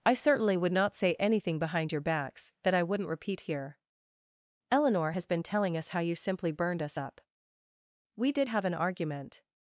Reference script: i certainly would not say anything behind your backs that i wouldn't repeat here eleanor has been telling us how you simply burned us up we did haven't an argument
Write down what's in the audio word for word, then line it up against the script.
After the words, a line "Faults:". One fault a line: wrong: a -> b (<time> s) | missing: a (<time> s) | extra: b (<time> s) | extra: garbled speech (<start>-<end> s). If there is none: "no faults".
i certainly would not say anything behind your backs that i wouldn't repeat here eleanor has been telling us how you simply burned us up we did have an argument
Faults:
wrong: haven't -> have (8.5 s)